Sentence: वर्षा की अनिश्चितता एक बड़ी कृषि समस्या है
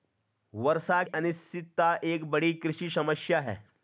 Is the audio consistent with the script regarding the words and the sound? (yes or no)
no